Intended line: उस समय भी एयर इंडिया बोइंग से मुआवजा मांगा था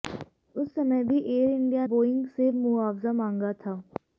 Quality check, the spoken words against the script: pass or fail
pass